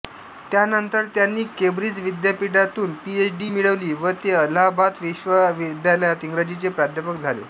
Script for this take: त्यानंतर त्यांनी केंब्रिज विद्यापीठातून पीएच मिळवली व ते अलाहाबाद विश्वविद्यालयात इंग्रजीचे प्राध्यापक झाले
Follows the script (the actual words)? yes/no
no